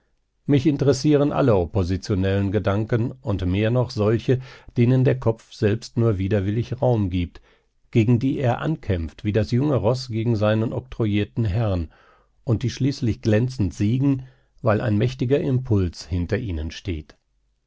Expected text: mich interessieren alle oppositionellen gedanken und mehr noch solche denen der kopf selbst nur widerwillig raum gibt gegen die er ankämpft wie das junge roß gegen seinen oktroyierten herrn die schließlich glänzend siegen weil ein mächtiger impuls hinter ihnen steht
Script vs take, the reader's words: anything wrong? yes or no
yes